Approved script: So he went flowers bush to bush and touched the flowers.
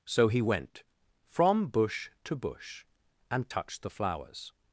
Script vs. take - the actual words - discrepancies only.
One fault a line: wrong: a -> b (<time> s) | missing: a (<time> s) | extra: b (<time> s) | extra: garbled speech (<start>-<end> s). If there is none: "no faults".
wrong: flowers -> from (1.3 s)